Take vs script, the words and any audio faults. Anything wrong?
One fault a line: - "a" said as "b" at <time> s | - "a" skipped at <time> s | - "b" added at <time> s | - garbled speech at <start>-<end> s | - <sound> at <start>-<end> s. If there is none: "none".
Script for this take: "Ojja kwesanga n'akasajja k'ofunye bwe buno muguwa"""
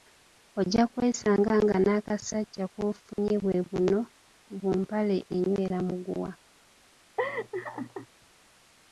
- "nga" added at 1.6 s
- dropout at 3.1-3.2 s
- "bu mpale enywera" added at 4.6 s
- laugh at 7.2-8.1 s